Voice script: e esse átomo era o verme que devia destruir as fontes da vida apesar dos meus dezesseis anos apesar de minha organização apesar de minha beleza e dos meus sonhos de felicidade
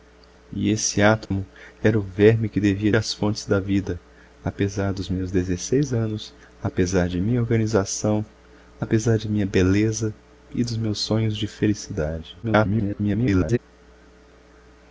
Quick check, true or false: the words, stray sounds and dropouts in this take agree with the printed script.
false